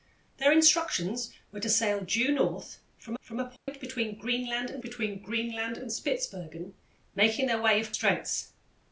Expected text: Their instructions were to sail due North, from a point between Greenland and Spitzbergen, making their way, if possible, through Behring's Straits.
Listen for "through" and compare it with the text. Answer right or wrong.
wrong